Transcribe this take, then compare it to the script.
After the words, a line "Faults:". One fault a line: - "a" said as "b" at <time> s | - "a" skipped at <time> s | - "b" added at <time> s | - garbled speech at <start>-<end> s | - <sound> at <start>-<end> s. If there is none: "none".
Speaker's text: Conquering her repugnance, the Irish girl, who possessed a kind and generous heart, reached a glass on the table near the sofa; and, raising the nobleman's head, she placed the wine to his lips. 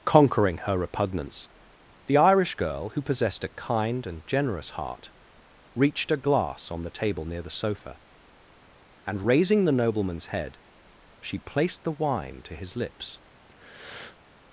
Conquering her repugnance, the Irish girl, who possessed a kind and generous heart, reached a glass on the table near the sofa; and, raising the nobleman's head, she placed the wine to his lips.
Faults:
- breath at 13.5-14.2 s